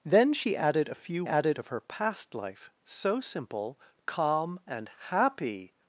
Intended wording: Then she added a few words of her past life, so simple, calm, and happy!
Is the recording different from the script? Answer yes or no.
yes